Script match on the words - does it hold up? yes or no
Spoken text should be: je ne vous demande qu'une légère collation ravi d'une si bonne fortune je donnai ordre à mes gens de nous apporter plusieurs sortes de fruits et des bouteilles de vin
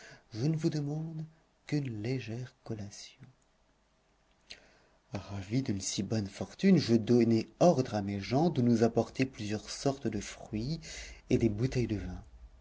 yes